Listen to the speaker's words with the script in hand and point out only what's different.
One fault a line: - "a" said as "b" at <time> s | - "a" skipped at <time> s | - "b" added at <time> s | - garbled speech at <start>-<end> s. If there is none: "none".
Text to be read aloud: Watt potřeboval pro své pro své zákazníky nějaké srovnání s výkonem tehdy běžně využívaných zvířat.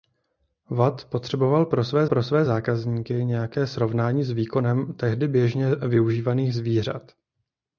none